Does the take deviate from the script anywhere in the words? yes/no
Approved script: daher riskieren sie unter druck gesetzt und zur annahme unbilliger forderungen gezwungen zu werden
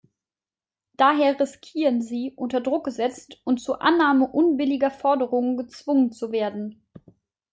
no